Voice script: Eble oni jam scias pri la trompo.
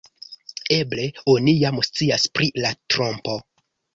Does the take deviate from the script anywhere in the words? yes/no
no